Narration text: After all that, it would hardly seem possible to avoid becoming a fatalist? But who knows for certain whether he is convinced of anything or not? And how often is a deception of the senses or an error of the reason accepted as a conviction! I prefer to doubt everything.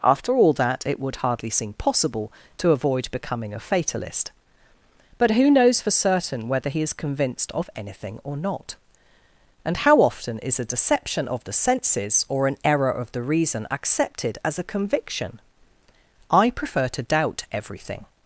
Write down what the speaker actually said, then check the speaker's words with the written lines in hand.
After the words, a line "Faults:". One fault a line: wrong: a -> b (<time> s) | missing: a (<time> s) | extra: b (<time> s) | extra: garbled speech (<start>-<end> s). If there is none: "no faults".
After all that, it would hardly seem possible to avoid becoming a fatalist? But who knows for certain whether he is convinced of anything or not? And how often is a deception of the senses or an error of the reason accepted as a conviction! I prefer to doubt everything.
Faults:
no faults